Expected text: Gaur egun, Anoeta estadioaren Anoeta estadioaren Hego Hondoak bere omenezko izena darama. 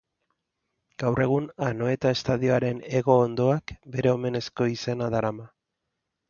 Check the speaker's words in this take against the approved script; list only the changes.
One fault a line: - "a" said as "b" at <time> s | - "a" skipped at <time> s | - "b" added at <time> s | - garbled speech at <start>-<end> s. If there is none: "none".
- "Anoeta estadioaren" skipped at 2.8 s